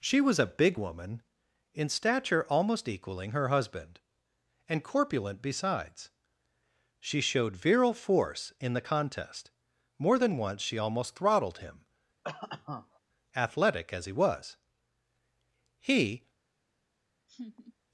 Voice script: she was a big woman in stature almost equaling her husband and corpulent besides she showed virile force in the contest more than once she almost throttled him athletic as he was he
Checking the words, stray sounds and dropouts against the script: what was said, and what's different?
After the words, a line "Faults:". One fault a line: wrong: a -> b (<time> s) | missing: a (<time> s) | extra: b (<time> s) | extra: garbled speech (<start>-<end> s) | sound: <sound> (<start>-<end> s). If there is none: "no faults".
she was a big woman in stature almost equaling her husband and corpulent besides she showed virile force in the contest more than once she almost throttled him athletic as he was he
Faults:
sound: cough (12.2-13.0 s)
sound: laugh (17.3-17.7 s)